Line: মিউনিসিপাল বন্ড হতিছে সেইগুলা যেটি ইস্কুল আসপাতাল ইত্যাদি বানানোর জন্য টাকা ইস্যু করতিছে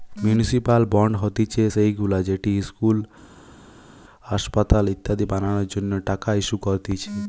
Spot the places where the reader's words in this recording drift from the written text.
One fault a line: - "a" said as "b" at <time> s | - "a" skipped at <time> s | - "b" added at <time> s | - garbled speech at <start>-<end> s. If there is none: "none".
none